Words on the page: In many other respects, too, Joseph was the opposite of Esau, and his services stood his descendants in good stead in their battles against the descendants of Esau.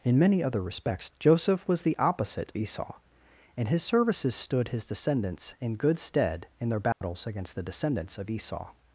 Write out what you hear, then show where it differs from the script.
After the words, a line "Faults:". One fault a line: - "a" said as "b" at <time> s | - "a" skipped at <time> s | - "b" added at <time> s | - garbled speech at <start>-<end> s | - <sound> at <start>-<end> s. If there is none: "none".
In many other respects, Joseph was the opposite Esau, and his services stood his descendants in good stead in their battles against the descendants of Esau.
Faults:
- "too" skipped at 1.1 s
- "of" skipped at 2.5 s
- dropout at 6.9-7.0 s